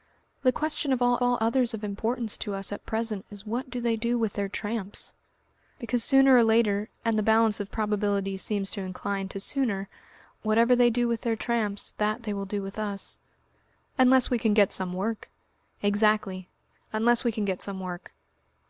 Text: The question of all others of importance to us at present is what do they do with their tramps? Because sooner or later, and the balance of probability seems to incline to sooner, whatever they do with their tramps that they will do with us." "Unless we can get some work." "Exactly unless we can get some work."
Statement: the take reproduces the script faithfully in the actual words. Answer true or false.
false